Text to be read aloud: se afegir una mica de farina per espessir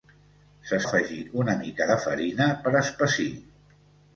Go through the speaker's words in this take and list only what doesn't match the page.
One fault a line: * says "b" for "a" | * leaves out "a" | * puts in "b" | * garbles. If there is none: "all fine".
all fine